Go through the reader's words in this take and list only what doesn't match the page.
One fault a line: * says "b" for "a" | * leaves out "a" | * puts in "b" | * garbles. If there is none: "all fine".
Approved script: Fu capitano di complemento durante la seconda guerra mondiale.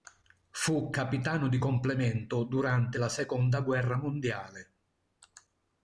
all fine